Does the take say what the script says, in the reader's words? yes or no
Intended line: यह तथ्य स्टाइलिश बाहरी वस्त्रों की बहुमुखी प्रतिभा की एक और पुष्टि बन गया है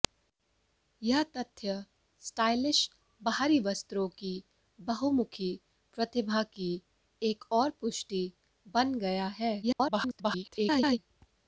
no